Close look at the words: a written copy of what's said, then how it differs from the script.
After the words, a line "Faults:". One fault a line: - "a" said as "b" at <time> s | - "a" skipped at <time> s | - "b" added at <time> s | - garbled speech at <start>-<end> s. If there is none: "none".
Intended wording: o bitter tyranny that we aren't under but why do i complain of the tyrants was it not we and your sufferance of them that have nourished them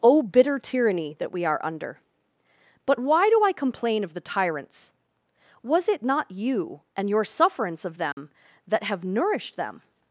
o bitter tyranny that we are under but why do i complain of the tyrants was it not you and your sufferance of them that have nourished them
Faults:
- "aren't" said as "are" at 1.4 s
- "we" said as "you" at 6.3 s